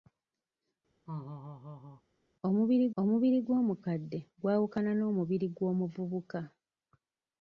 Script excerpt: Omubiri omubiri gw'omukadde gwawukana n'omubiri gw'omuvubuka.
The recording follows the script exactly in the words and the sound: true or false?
false